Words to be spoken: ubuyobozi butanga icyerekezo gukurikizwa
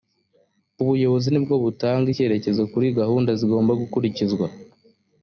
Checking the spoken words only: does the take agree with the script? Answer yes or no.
no